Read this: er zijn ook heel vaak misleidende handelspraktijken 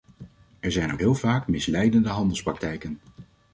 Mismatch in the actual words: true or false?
false